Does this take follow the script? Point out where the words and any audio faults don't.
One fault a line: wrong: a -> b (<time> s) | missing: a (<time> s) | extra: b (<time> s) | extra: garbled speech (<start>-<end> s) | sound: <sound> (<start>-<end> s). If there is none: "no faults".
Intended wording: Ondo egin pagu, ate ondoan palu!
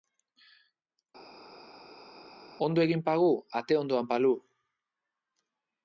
no faults